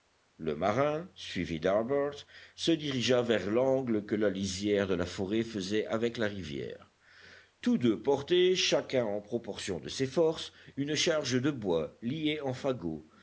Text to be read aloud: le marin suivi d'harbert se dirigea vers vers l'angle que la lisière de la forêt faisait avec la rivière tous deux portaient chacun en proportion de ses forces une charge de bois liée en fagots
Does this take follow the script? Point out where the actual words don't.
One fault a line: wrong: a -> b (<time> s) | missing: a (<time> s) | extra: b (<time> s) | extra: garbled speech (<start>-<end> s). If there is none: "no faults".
missing: vers (3.5 s)